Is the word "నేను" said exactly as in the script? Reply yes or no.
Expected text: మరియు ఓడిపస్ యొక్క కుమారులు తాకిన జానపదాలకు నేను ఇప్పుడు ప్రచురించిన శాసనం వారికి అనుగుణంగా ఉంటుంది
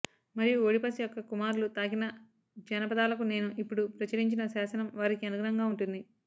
yes